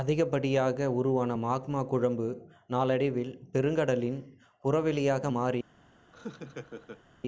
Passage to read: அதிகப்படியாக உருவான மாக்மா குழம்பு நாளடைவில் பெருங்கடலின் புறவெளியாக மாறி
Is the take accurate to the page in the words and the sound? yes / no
no